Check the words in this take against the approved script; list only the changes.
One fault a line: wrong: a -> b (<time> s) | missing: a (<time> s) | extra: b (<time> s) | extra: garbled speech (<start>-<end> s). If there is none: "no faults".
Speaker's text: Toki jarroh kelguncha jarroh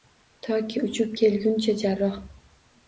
wrong: jarroh -> uchib (0.9 s)